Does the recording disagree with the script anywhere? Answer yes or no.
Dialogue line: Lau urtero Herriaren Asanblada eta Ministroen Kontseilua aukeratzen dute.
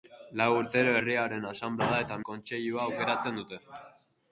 yes